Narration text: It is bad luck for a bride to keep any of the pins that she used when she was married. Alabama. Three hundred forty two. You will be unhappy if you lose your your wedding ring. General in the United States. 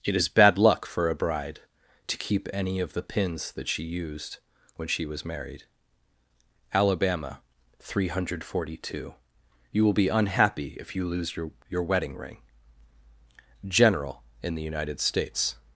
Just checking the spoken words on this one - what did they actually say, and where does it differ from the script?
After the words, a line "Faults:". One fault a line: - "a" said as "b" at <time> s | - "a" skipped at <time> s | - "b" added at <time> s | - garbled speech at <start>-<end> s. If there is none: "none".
It is bad luck for a bride to keep any of the pins that she used when she was married. Alabama. Three hundred forty two. You will be unhappy if you lose your your wedding ring. General in the United States.
Faults:
none